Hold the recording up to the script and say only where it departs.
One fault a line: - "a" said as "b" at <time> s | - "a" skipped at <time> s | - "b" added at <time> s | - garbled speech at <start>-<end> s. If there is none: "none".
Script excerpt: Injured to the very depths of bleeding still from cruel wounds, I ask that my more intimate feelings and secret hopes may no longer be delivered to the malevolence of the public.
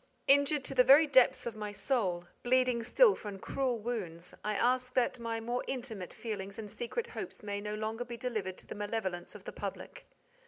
- "my soul" added at 1.6 s